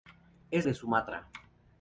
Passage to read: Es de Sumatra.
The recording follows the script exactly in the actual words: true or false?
true